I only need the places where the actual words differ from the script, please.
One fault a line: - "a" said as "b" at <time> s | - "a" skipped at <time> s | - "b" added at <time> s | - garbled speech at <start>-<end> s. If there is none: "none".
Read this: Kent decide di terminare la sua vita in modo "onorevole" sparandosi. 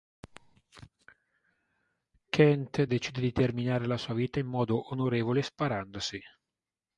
none